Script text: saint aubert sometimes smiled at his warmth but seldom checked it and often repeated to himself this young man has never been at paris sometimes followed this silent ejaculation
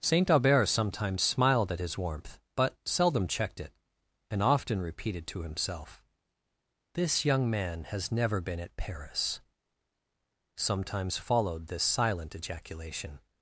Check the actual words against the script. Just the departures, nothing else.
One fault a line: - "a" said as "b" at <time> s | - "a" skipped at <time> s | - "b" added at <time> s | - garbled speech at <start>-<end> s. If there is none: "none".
none